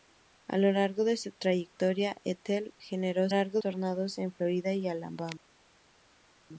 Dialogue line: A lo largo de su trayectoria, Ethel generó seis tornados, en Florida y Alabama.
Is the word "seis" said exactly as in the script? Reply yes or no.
no